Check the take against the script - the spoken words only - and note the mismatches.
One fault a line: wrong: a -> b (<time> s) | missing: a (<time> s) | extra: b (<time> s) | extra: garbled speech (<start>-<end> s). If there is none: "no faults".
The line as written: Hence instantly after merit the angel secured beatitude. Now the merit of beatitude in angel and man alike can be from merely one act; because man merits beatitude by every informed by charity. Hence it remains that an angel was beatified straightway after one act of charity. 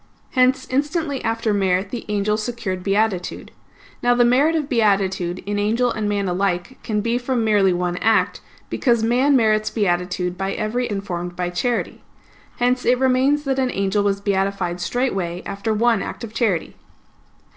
no faults